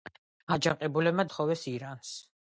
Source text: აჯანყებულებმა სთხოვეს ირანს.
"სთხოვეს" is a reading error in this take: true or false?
false